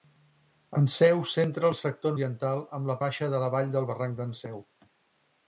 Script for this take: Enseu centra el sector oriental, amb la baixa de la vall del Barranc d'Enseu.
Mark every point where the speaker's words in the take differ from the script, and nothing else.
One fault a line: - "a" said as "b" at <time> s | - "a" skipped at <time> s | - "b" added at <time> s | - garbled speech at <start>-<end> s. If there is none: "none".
none